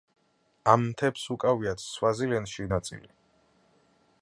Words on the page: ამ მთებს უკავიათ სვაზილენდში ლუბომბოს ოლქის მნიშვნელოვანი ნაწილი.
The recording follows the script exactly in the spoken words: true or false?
false